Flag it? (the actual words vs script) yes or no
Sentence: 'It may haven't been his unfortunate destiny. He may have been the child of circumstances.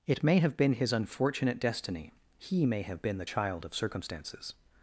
yes